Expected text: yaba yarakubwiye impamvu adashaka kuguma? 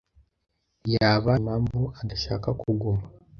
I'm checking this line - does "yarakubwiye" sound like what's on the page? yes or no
no